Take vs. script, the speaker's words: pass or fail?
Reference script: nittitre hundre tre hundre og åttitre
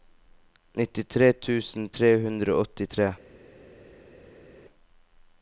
fail